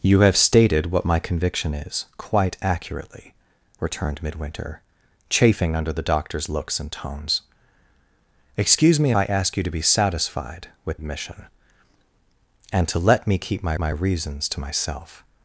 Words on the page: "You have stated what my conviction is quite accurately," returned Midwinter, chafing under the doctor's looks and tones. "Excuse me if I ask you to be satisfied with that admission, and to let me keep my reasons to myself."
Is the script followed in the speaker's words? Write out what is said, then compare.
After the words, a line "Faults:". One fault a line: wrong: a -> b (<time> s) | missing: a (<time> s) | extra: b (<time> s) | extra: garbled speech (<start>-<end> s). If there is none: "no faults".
"You have stated what my conviction is quite accurately," returned Midwinter, chafing under the doctor's looks and tones. "Excuse me I ask you to be satisfied with admission, and to let me keep my my reasons to myself."
Faults:
missing: if (9.1 s)
missing: that (11.0 s)
extra: my (13.8 s)